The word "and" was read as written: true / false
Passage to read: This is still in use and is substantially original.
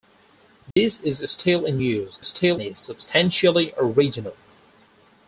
false